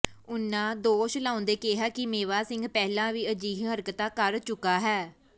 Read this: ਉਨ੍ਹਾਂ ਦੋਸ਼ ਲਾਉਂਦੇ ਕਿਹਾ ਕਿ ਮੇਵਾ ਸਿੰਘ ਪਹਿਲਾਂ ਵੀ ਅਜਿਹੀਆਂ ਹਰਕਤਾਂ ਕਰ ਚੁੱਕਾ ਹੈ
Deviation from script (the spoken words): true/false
false